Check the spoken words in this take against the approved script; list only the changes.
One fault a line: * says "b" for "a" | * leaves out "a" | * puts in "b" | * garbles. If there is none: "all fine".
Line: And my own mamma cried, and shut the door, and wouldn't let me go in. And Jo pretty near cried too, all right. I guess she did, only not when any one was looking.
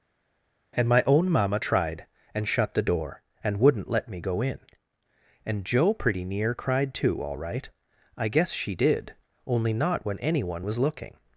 * says "tried" for "cried"